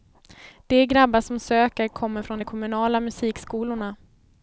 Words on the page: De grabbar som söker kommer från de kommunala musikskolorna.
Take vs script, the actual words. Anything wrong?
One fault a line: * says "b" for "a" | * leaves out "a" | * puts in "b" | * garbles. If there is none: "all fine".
all fine